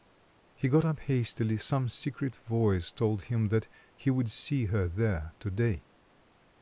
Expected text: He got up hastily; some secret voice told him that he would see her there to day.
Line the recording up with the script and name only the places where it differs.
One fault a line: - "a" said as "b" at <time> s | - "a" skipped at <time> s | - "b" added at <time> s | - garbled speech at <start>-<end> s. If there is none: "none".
none